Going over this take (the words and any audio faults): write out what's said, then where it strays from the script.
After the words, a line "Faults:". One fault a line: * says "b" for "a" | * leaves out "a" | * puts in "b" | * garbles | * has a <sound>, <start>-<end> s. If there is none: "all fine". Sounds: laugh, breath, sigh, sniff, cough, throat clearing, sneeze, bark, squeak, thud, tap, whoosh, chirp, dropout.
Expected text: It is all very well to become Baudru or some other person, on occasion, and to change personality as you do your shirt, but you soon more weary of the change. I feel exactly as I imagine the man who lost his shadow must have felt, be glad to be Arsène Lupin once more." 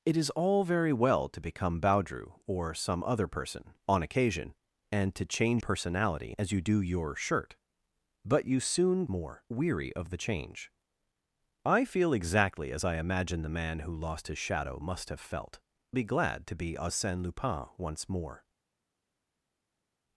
It is all very well to become Baudru or some other person, on occasion, and to change personality as you do your shirt, but you soon more weary of the change. I feel exactly as I imagine the man who lost his shadow must have felt, be glad to be Arsène Lupin once more."
Faults:
all fine